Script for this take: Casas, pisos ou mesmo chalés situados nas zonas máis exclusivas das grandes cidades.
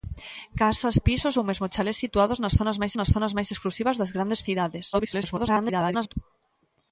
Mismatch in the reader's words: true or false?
true